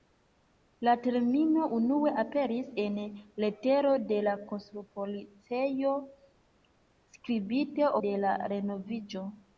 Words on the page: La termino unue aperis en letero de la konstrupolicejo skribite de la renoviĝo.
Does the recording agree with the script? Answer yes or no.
yes